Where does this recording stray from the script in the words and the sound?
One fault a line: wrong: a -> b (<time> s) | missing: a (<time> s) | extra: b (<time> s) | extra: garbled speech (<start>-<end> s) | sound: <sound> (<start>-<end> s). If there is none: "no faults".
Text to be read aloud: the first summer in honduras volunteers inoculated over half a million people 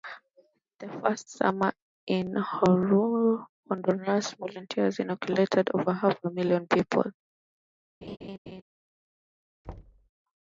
sound: laugh (8.0-8.6 s)
sound: thud (9.6-10.1 s)